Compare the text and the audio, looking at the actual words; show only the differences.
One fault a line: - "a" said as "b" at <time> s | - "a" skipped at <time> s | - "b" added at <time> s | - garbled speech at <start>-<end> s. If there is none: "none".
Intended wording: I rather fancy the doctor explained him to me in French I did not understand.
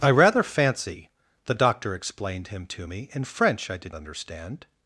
- "not" skipped at 3.9 s